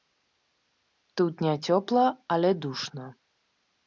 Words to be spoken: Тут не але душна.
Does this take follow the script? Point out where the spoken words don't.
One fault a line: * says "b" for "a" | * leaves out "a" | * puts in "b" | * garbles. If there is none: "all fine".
* puts in "цёпла"